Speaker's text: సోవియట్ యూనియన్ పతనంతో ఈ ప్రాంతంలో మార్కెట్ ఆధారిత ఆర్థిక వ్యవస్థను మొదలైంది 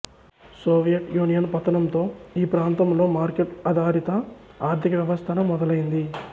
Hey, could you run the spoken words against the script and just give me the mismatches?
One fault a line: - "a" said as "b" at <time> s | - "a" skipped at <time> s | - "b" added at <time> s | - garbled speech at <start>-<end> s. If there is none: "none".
none